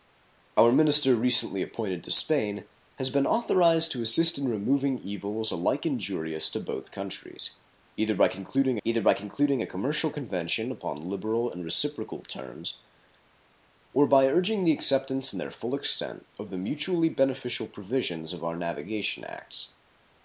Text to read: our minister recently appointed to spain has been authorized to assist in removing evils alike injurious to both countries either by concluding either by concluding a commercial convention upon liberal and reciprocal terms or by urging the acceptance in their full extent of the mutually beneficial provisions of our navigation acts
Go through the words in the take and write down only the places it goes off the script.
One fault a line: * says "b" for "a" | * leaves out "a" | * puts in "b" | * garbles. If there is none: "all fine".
all fine